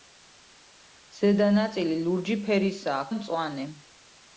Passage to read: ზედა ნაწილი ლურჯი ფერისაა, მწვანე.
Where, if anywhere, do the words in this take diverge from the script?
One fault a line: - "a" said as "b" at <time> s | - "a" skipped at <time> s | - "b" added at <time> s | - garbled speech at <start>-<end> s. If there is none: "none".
none